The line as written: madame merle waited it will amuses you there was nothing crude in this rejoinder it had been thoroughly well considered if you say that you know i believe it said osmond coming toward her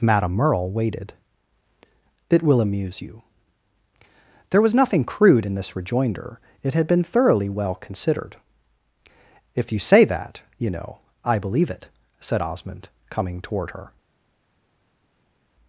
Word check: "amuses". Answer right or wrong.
wrong